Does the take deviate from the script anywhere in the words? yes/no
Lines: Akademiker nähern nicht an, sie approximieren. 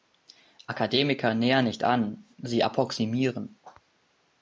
no